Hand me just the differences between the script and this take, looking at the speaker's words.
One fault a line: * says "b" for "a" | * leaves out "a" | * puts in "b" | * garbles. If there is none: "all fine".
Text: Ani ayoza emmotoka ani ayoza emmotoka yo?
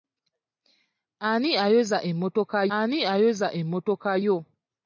all fine